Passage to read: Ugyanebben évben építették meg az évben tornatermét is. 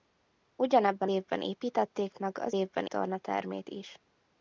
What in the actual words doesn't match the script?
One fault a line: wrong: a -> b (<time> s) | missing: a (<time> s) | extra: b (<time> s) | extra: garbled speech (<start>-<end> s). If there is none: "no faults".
no faults